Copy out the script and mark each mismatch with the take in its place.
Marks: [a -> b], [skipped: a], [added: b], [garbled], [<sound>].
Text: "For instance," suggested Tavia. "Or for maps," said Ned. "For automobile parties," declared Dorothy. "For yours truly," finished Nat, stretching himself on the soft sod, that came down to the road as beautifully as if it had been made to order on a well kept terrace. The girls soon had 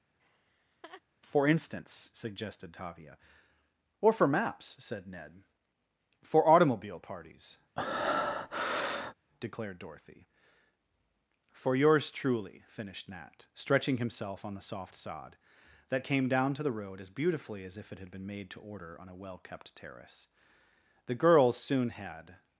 [laugh] "For instance," suggested Tavia. "Or for maps," said Ned. "For automobile parties," [breath] declared Dorothy. "For yours truly," finished Nat, stretching himself on the soft sod, that came down to the road as beautifully as if it had been made to order on a well kept terrace. The girls soon had